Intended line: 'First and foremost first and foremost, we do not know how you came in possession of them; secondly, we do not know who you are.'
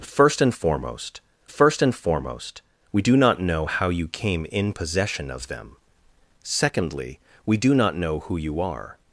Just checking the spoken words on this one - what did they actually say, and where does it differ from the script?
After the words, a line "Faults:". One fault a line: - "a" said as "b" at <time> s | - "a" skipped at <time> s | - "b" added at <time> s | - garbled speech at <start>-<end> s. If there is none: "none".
'First and foremost first and foremost, we do not know how you came in possession of them; secondly, we do not know who you are.'
Faults:
none